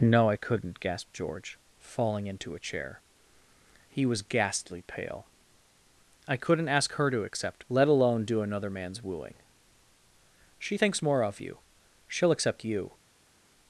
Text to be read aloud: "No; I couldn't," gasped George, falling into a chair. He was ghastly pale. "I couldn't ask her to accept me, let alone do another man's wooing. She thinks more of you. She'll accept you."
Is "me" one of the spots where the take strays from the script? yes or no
yes